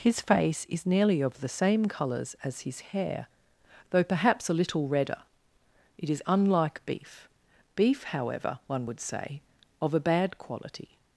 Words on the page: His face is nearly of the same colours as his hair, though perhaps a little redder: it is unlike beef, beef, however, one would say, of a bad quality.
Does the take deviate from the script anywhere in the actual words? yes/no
no